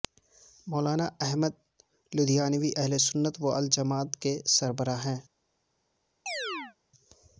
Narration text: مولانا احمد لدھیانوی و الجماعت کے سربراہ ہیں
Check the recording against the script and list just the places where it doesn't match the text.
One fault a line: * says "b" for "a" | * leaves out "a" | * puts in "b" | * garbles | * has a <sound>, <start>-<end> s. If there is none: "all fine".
* puts in "اہلسنت"
* has a chirp, 6.3-6.8 s